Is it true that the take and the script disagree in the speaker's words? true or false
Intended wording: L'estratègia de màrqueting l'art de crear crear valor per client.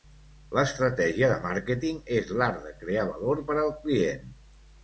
true